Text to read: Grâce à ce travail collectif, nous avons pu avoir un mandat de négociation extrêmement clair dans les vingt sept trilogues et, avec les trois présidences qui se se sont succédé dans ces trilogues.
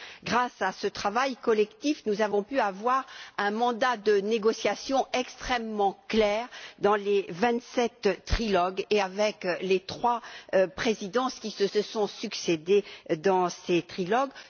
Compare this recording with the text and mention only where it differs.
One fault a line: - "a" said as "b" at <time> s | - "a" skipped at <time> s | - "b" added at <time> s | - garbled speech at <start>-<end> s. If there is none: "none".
none